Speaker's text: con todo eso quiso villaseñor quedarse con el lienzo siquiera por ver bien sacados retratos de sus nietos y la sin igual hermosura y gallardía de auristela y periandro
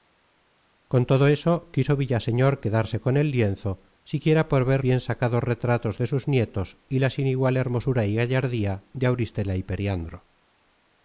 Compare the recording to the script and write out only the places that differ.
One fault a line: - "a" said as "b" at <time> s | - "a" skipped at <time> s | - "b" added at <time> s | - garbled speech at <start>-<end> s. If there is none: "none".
none